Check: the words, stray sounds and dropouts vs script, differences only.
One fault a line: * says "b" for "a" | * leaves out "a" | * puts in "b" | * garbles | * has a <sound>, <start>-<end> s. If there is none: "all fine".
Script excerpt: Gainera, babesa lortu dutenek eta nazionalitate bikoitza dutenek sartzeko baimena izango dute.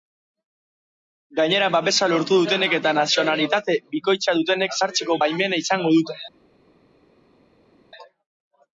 all fine